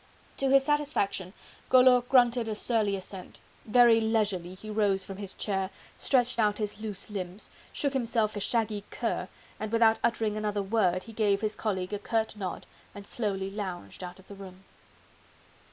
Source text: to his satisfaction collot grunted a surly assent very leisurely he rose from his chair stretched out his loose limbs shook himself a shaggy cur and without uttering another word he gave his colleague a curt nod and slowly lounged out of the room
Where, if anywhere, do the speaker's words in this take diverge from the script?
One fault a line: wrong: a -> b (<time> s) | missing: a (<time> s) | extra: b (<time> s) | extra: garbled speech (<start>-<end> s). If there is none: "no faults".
no faults